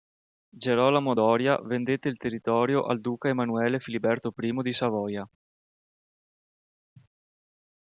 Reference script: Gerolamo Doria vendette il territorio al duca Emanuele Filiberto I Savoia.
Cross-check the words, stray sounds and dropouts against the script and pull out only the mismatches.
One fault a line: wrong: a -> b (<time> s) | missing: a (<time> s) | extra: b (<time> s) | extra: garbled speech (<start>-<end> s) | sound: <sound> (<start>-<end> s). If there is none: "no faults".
extra: di (4.6 s)